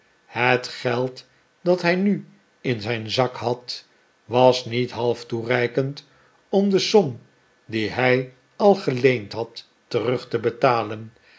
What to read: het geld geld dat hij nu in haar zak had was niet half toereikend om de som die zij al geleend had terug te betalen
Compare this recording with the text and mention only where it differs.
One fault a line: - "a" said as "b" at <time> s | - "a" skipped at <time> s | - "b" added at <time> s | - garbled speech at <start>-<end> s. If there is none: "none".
- "geld" skipped at 1.3 s
- "haar" said as "zijn" at 2.8 s
- "zij" said as "hij" at 7.9 s